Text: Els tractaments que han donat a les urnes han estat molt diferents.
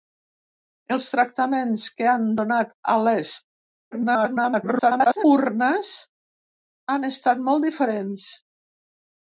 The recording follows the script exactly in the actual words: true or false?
false